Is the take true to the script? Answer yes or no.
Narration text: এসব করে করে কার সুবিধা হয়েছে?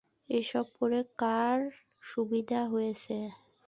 no